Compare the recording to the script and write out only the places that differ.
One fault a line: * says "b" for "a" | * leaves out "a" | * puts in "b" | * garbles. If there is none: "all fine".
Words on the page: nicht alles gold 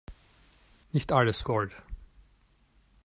all fine